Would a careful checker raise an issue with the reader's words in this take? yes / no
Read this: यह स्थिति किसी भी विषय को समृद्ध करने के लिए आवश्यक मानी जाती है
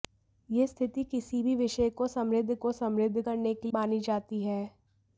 yes